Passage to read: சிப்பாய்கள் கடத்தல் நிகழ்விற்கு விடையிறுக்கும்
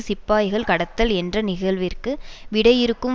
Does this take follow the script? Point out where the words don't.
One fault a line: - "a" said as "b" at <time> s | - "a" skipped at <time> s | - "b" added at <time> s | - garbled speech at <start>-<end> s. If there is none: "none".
- "என்ற" added at 1.1 s